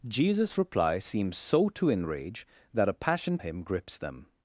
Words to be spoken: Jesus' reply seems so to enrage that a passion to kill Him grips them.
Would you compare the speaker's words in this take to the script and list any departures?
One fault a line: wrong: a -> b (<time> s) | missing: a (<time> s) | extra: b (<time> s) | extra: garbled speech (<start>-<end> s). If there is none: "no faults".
missing: to kill (3.4 s)